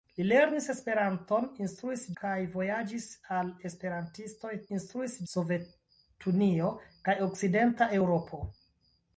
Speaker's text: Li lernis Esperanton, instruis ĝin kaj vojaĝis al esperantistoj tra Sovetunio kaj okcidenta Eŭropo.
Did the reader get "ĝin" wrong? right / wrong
wrong